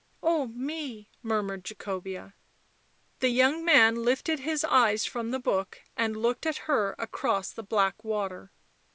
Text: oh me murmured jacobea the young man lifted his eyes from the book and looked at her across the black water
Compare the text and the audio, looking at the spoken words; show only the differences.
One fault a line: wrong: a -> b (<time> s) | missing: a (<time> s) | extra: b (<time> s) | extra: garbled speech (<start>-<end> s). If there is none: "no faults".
no faults